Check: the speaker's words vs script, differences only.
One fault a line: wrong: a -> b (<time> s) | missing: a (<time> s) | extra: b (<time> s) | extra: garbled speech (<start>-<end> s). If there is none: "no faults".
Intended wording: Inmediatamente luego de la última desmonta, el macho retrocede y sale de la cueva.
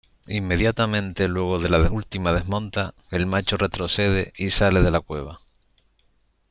no faults